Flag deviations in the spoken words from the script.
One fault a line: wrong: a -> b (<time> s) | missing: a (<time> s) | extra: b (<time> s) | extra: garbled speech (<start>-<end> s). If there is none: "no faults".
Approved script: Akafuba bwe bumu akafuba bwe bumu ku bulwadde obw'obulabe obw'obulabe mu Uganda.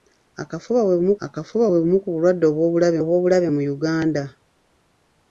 no faults